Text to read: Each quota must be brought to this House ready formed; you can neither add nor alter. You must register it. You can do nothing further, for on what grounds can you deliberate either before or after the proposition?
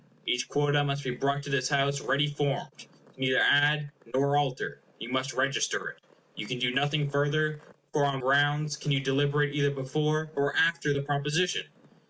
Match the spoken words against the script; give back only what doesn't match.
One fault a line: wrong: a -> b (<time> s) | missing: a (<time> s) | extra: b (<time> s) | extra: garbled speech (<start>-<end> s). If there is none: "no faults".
missing: what (8.2 s)